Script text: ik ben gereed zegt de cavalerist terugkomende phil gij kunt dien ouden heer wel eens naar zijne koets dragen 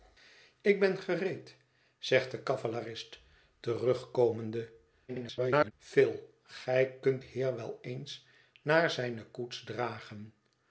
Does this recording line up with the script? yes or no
no